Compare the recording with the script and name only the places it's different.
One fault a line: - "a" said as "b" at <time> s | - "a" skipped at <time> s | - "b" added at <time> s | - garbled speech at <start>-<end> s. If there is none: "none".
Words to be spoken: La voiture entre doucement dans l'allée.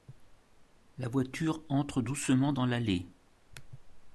none